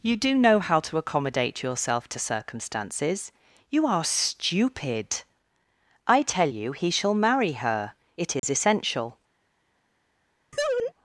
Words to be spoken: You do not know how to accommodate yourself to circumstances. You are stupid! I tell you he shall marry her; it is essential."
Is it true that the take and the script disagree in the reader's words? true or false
true